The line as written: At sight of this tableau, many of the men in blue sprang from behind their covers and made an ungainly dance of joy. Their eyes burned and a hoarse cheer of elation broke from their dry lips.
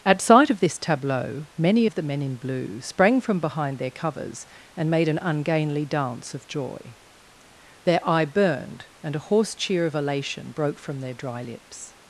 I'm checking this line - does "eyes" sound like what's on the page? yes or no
no